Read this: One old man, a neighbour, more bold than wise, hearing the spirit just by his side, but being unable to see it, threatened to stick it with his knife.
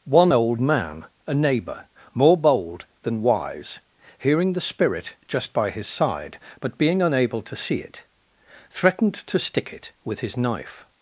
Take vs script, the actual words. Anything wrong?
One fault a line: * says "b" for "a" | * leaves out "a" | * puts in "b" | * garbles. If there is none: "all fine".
all fine